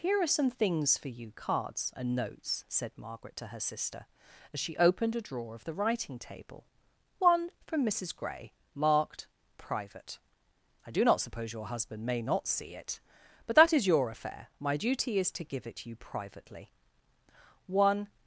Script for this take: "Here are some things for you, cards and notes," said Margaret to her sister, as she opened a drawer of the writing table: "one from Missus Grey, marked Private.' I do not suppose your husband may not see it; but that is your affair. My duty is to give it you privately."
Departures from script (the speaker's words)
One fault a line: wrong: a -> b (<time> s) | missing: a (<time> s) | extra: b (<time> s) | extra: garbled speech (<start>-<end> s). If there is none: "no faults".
extra: One (17.7 s)